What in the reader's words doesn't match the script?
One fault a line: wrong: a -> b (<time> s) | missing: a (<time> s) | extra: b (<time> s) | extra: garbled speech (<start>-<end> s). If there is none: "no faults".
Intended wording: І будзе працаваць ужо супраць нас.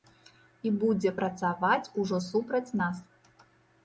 no faults